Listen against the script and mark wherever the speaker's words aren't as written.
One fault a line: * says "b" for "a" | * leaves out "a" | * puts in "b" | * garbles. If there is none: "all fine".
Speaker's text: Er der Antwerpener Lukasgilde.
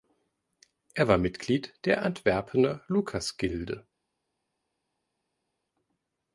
* puts in "war Mitglied"